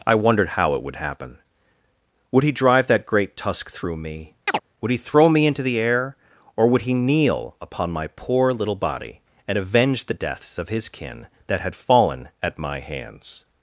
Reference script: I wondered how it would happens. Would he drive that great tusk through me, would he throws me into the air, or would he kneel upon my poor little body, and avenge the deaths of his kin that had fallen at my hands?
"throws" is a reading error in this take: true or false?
true